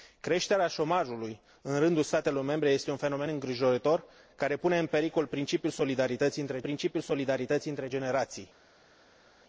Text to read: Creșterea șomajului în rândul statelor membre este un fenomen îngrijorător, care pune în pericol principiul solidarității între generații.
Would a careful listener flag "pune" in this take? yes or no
no